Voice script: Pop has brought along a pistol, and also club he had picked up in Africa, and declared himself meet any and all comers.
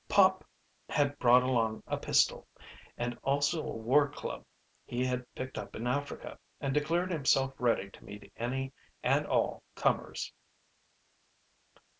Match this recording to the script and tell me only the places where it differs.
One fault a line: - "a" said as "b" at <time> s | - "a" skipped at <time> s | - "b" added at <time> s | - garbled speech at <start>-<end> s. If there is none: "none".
- "has" said as "had" at 0.9 s
- "a war" added at 3.6 s
- "ready to" added at 7.6 s